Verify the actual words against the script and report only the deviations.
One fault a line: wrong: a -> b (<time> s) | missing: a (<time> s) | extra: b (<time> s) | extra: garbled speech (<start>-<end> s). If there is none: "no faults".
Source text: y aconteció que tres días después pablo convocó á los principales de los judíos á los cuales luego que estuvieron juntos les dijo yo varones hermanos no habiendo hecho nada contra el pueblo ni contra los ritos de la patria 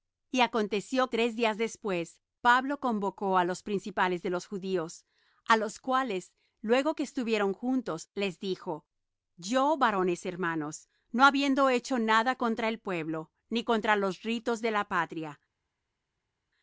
missing: que (1.1 s)